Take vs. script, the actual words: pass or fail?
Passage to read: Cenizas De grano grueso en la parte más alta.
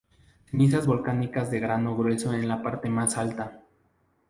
fail